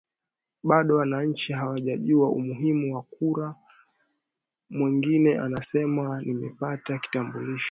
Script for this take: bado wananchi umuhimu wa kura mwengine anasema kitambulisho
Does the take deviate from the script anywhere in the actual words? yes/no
yes